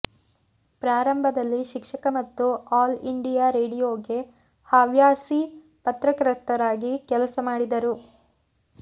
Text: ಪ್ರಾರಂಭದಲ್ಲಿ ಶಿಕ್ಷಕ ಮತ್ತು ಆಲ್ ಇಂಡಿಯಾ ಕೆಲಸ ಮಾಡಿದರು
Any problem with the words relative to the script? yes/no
yes